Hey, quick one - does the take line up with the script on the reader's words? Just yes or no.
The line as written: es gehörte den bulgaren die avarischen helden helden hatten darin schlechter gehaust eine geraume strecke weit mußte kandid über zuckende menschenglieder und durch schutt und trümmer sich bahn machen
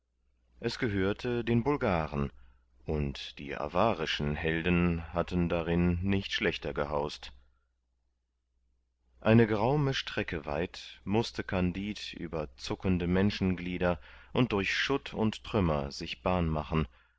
no